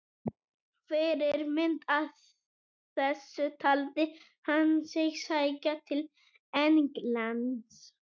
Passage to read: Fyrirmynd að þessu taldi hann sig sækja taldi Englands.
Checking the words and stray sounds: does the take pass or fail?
fail